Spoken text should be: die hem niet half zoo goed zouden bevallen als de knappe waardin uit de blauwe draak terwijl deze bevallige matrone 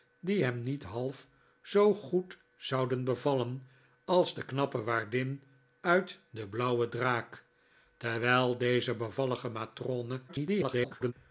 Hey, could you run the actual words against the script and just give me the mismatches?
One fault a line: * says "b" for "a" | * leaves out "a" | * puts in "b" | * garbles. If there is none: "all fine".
* garbles